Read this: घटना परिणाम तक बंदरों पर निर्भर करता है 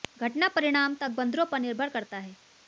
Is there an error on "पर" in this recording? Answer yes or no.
no